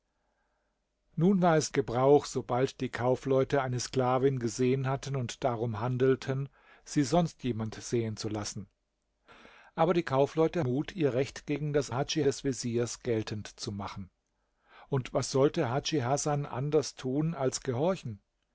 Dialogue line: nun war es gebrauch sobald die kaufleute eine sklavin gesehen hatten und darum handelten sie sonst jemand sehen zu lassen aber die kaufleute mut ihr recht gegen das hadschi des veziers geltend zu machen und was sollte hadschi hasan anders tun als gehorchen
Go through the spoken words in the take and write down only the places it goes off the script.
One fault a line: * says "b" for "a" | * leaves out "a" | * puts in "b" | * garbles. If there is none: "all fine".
all fine